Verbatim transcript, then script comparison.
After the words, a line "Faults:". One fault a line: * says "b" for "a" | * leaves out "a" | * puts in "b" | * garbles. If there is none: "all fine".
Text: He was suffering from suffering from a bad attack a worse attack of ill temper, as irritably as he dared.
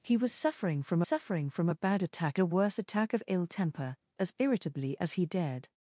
He was suffering from suffering from a bad attack a worse attack of ill temper, as irritably as he dared.
Faults:
all fine